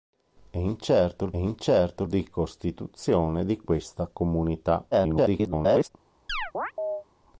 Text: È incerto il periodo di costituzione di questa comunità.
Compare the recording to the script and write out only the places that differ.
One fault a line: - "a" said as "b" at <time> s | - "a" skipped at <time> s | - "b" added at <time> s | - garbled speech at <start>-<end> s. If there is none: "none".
- "periodo" said as "incerto" at 1.4 s
- garbled speech at 4.9-5.9 s